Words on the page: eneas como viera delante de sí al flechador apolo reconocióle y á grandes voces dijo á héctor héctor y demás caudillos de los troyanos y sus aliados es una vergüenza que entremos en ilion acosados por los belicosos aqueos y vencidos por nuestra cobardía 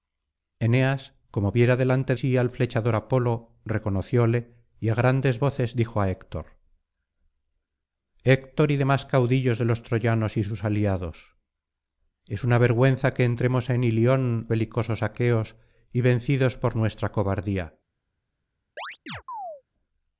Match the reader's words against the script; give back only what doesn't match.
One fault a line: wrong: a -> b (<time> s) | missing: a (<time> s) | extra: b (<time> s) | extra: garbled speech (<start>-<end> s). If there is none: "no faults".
missing: de (2.1 s)
missing: acosados por los (14.5 s)